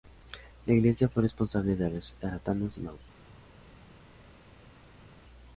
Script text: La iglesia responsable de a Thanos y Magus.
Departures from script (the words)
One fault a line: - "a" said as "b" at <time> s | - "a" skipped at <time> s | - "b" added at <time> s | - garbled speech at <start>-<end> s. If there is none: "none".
- "fue" added at 1.1 s
- "resucitar" added at 1.9 s